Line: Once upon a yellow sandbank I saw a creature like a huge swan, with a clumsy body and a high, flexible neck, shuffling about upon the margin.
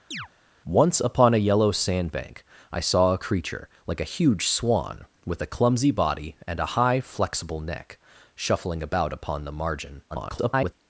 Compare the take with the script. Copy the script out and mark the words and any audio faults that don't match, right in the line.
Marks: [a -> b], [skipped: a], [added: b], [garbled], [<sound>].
[chirp] Once upon a yellow sandbank I saw a creature like a huge swan, with a clumsy body and a high, flexible neck, shuffling about upon the margin. [garbled]